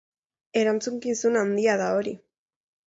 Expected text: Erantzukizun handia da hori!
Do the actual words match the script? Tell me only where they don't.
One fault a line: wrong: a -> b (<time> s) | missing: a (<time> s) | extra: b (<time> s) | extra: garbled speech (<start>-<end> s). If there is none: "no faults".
no faults